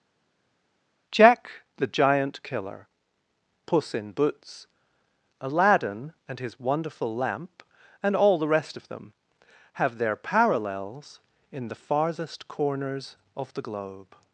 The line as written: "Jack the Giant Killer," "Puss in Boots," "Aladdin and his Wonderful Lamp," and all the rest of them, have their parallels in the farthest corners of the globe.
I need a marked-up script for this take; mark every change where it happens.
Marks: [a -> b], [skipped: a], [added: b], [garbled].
"Jack the Giant Killer," "Puss in Boots," "Aladdin and his Wonderful Lamp," and all the rest of them, have their parallels in the farthest corners of the globe.